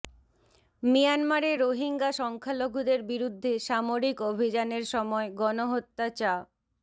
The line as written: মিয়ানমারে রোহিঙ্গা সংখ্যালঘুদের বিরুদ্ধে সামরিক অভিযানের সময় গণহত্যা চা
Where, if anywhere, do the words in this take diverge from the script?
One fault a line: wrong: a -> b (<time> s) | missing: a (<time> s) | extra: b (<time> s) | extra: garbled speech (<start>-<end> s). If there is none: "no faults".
no faults